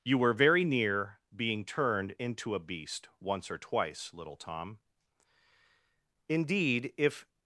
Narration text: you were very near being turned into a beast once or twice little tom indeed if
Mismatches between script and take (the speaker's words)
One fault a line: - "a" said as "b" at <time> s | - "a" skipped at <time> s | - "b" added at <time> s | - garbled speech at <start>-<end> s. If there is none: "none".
none